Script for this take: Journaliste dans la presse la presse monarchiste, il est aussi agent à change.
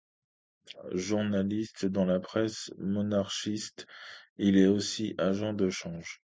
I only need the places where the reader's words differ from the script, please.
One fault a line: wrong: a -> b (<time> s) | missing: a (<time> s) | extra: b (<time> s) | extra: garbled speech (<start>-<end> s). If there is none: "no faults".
missing: la presse (2.7 s)
wrong: à -> de (5.5 s)